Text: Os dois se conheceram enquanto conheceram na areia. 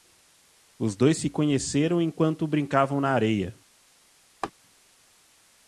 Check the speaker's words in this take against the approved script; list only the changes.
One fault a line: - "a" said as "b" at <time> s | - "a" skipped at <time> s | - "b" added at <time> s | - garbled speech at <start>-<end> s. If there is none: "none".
- "conheceram" said as "brincavam" at 2.5 s